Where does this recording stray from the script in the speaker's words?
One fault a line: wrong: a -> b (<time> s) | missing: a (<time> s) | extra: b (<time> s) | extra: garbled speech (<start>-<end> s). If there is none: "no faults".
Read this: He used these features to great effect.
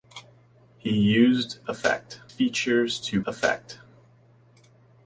wrong: these -> effect (1.7 s)
missing: great (3.2 s)